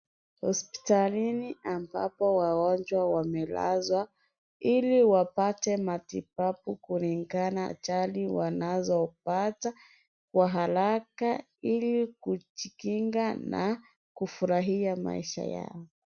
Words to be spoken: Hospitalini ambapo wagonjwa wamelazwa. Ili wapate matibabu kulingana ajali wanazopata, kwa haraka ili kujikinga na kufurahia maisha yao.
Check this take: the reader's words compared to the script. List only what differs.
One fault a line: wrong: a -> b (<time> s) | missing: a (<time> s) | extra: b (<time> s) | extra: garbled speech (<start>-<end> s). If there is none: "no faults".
no faults